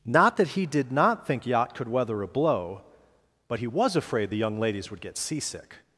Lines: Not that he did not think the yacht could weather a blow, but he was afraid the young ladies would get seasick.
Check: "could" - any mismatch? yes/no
no